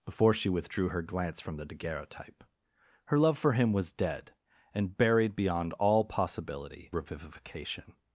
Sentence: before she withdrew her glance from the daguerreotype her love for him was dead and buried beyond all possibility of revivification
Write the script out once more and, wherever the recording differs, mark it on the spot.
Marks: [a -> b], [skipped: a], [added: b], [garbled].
before she withdrew her glance from the daguerreotype her love for him was dead and buried beyond all possibility [skipped: of] revivification